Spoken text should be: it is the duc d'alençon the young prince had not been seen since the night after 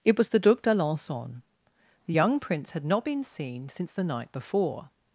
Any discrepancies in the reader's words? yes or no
yes